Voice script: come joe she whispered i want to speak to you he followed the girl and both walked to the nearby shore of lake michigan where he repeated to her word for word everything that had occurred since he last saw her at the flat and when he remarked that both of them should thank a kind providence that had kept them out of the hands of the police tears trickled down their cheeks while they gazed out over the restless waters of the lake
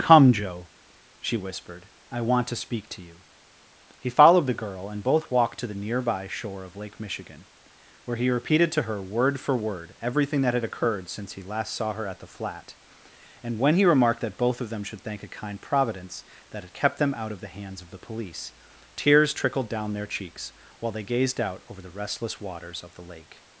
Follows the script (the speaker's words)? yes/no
yes